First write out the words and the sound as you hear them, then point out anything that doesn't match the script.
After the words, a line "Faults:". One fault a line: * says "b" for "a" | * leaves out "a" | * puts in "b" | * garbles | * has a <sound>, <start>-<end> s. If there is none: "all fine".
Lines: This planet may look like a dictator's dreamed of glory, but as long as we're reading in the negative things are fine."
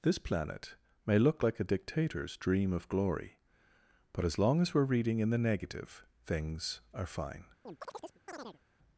This planet may look like a dictator's dream of glory, but as long as we're reading in the negative things are fine."
Faults:
* says "dream" for "dreamed"
* has a chirp, 7.6-8.6 s